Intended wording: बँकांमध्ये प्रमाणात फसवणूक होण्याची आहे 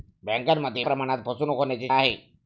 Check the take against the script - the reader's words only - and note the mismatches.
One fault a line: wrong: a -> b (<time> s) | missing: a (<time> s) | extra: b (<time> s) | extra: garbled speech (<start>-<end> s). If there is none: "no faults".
no faults